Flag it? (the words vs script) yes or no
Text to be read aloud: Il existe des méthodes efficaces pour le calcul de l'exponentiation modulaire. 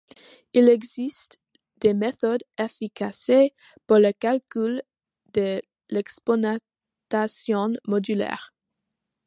no